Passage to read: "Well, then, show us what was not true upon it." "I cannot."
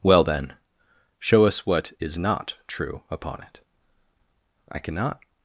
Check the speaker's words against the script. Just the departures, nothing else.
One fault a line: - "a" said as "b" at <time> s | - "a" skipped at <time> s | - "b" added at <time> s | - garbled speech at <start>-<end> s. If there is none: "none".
- "was" said as "is" at 2.0 s